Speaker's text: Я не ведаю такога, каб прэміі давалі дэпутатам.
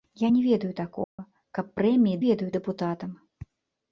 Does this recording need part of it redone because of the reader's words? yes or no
yes